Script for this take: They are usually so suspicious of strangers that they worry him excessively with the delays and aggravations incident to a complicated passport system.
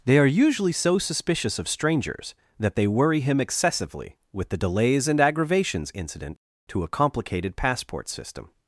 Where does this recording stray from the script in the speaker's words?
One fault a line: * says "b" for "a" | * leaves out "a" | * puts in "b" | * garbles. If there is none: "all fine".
all fine